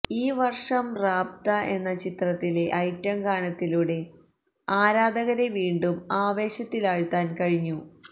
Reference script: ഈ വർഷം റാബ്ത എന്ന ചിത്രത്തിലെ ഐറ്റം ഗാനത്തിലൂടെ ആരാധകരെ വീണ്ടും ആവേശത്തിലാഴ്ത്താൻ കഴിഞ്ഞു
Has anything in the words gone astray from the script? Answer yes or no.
no